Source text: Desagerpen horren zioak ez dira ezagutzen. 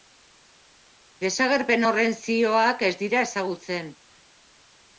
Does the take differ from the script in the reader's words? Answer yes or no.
no